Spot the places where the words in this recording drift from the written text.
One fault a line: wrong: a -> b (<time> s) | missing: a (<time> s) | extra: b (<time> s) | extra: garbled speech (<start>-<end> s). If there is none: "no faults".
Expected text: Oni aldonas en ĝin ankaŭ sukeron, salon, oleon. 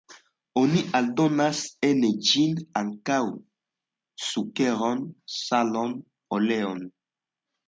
no faults